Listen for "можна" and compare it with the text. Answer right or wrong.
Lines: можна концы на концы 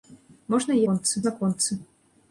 right